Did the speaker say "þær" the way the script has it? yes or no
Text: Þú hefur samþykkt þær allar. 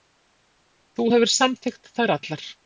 yes